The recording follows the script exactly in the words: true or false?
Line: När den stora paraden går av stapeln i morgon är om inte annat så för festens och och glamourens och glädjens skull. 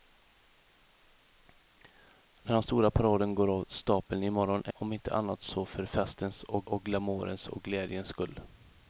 true